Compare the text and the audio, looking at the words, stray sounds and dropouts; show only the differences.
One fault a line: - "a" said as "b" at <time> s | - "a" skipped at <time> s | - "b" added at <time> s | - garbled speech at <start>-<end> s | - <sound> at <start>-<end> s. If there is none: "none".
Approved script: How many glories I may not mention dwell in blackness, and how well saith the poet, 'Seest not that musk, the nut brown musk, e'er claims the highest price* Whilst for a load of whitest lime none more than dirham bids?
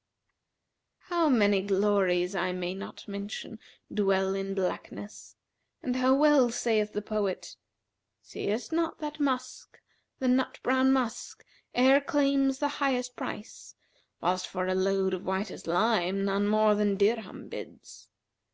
none